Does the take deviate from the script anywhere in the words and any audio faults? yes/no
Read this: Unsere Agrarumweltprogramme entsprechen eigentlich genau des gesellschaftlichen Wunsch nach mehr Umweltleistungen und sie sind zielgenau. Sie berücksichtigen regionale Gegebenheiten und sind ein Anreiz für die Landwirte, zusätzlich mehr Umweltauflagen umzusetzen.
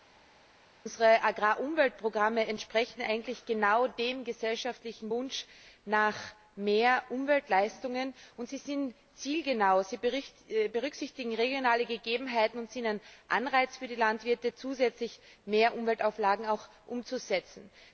yes